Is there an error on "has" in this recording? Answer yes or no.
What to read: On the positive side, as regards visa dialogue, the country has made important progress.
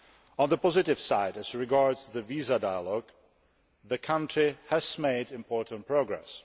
no